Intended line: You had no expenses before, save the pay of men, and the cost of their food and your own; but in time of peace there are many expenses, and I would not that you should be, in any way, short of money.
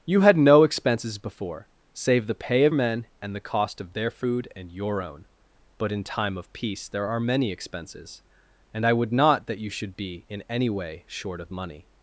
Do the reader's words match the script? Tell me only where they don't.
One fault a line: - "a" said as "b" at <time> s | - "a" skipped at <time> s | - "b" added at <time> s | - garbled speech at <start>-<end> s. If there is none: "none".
none